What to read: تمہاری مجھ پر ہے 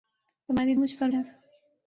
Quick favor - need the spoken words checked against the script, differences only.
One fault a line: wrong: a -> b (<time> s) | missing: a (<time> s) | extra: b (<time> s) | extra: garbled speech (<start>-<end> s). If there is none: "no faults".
no faults